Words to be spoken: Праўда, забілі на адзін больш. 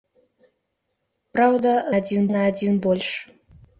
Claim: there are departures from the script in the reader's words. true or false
true